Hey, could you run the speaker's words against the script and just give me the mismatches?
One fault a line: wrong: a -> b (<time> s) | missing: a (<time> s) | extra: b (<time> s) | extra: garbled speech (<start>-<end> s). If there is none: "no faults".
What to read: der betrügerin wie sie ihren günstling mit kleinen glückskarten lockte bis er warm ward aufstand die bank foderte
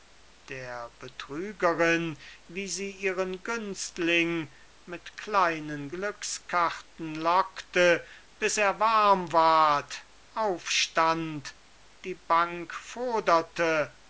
no faults